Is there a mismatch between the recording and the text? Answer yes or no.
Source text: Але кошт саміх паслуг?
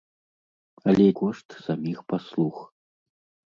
no